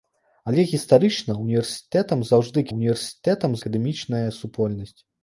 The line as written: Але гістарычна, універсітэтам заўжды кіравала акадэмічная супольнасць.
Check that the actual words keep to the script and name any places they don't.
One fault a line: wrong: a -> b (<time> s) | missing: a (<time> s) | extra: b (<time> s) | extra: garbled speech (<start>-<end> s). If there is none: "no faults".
wrong: кіравала -> універсітэтам (2.8 s)